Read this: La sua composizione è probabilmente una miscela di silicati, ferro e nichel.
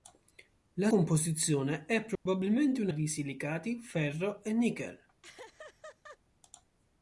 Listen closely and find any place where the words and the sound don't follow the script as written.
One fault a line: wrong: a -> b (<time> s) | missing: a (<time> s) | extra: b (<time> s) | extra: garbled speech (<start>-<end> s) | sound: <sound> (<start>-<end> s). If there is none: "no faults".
missing: sua (0.9 s)
sound: dropout (2.2-2.3 s)
missing: miscela (2.9 s)
sound: laugh (5.2-6.2 s)